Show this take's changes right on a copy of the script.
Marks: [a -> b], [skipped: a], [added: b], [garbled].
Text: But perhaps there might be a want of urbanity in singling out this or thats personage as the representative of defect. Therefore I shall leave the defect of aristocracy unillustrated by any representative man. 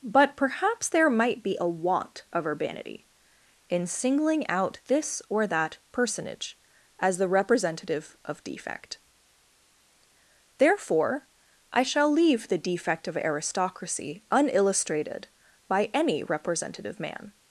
But perhaps there might be a want of urbanity in singling out this or [thats -> that] personage as the representative of defect. Therefore I shall leave the defect of aristocracy unillustrated by any representative man.